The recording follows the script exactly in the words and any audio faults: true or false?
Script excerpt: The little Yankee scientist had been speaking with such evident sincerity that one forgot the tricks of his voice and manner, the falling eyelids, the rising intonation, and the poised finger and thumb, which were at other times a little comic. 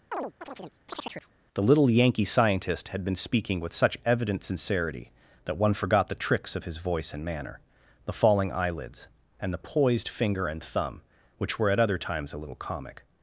false